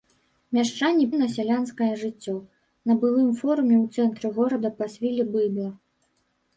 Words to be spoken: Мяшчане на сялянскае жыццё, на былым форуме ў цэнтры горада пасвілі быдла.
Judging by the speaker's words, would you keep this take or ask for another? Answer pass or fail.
pass